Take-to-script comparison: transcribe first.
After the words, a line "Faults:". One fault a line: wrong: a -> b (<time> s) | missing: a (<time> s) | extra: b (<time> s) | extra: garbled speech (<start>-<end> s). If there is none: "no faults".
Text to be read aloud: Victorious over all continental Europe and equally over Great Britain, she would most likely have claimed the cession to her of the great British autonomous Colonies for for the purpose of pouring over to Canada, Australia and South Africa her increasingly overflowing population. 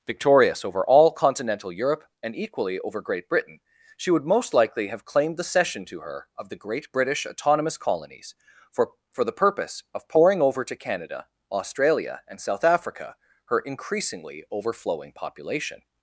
Victorious over all continental Europe and equally over Great Britain, she would most likely have claimed the cession to her of the great British autonomous Colonies for for the purpose of pouring over to Canada, Australia and South Africa her increasingly overflowing population.
Faults:
no faults